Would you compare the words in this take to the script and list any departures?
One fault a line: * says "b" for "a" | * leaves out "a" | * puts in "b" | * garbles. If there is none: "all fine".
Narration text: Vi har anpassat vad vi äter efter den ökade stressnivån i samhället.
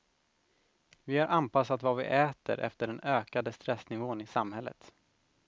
all fine